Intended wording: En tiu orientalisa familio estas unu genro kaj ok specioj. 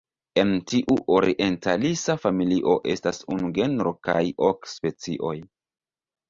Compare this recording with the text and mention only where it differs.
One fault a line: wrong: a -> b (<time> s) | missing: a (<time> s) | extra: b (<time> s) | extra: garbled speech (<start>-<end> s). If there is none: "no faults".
no faults